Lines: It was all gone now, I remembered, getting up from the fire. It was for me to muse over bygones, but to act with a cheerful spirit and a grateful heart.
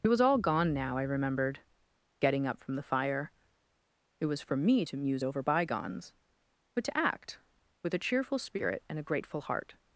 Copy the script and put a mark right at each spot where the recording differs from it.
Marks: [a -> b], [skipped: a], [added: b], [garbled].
It was all gone now, I remembered, getting up from the fire. It was for me to muse over bygones, but to act with a cheerful spirit and a grateful heart.